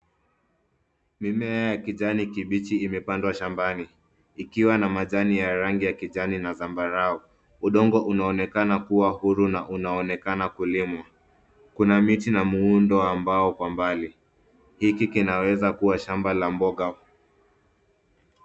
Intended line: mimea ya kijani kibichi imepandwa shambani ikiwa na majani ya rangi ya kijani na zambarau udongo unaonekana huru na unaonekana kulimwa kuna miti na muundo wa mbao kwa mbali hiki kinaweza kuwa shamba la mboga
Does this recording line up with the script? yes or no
no